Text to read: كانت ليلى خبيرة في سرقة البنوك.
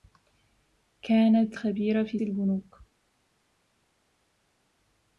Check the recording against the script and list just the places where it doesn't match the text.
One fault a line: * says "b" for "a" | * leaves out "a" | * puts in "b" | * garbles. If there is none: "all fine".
* leaves out "ليلى"
* leaves out "سرقة"